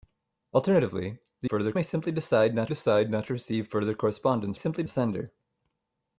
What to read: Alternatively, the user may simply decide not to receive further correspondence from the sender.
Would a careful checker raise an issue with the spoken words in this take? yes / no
yes